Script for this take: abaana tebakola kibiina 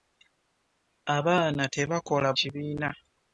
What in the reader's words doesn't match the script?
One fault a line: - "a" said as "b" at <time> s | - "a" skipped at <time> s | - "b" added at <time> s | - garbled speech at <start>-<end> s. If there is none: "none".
none